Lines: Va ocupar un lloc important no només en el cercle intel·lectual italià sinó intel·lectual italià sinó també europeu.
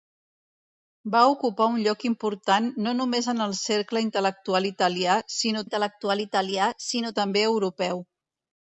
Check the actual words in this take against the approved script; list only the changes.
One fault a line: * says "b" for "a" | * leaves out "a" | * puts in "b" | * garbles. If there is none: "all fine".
all fine